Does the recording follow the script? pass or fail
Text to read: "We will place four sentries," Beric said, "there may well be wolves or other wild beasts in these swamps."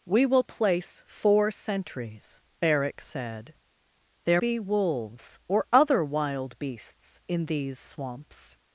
fail